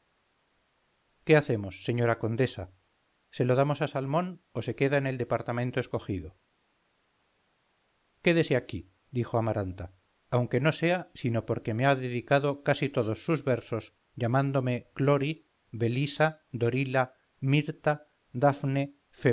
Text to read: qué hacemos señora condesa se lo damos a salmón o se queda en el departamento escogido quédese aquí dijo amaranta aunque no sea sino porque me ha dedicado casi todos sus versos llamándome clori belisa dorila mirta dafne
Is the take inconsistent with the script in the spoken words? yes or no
no